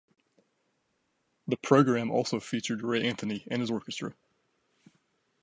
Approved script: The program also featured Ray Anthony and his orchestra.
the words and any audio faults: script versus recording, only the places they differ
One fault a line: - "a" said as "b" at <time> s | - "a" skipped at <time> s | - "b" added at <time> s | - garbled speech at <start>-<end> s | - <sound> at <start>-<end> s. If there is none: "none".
none